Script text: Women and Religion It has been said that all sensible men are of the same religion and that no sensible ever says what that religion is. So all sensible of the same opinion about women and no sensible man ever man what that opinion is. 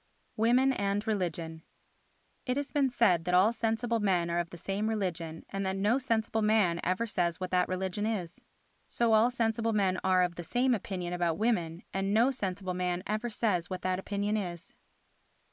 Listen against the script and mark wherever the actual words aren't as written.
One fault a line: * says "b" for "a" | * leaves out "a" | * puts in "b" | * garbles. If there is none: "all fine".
* puts in "man"
* puts in "men are"
* says "says" for "man"